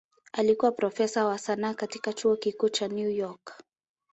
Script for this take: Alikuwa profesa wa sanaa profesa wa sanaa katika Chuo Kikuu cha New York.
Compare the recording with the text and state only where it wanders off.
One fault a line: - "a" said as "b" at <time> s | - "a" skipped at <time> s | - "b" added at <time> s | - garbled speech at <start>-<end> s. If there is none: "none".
- "profesa wa sanaa" skipped at 1.7 s